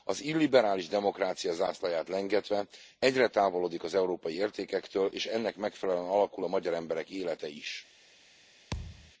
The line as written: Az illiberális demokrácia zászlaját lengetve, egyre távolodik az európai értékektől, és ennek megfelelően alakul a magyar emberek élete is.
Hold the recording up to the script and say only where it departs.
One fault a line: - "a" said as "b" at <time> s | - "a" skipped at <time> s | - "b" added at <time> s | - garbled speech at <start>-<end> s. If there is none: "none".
none